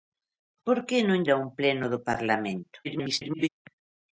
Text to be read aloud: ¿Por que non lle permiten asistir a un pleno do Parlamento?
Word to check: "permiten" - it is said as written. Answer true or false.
false